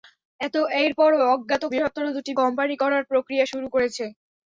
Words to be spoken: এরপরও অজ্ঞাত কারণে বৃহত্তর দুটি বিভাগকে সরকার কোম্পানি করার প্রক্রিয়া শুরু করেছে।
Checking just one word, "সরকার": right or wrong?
wrong